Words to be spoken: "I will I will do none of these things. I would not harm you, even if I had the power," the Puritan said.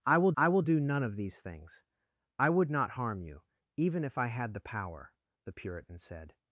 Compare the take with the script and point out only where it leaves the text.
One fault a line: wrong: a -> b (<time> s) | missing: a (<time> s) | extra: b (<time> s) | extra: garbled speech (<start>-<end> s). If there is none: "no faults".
no faults